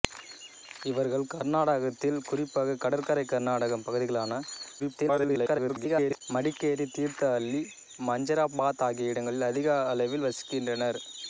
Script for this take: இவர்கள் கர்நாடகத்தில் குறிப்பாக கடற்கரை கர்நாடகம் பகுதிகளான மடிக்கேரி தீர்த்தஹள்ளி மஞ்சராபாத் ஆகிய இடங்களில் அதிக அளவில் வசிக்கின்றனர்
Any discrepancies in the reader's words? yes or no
yes